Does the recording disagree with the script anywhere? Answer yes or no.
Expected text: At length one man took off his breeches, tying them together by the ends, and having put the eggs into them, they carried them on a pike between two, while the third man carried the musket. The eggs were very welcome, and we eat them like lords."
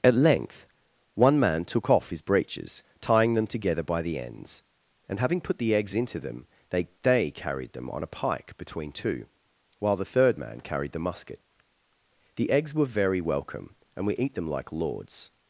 yes